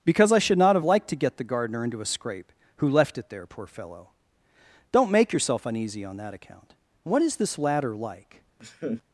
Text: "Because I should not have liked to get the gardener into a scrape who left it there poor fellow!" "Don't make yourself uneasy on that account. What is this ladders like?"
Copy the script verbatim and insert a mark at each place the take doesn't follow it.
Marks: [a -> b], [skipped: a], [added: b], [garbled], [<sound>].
"Because I should not have liked to get the gardener into a scrape who left it there poor fellow!" "Don't make yourself uneasy on that account. What is this [ladders -> ladder] like?" [laugh]